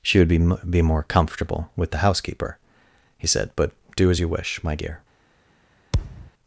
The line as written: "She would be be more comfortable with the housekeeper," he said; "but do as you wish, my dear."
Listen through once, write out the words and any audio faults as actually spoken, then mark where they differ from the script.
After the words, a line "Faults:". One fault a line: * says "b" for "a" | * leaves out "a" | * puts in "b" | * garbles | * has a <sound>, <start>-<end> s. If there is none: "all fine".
"She would be be more comfortable with the housekeeper," he said; "but do as you wish, my dear."
Faults:
* has a thud, 5.9-6.3 s